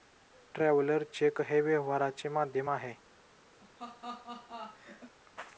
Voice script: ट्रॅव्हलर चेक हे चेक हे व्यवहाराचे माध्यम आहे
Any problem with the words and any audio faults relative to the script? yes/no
yes